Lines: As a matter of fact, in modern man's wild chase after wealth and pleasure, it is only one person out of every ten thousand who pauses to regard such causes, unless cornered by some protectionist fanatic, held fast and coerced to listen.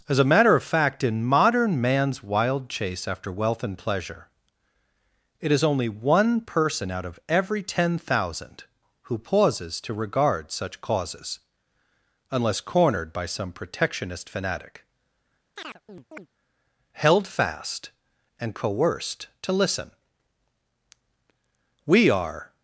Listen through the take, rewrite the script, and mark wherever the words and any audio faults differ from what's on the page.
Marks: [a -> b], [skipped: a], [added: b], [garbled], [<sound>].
As a matter of fact, in modern man's wild chase after wealth and pleasure, it is only one person out of every ten thousand who pauses to regard such causes, unless cornered by some protectionist fanatic, [chirp] held fast and coerced to listen. [added: We are]